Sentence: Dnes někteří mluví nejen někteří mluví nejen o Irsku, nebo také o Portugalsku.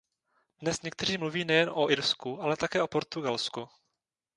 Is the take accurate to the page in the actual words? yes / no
no